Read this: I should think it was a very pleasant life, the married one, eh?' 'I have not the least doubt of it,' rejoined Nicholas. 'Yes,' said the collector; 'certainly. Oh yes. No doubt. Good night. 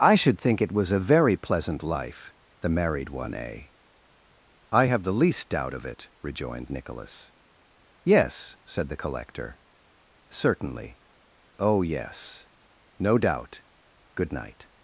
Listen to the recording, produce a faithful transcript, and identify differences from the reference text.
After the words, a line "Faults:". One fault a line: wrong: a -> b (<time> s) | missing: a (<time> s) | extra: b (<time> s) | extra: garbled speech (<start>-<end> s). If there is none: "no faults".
I should think it was a very pleasant life, the married one, eh?' 'I have the least doubt of it,' rejoined Nicholas. 'Yes,' said the collector; 'certainly. Oh yes. No doubt. Good night.
Faults:
missing: not (5.0 s)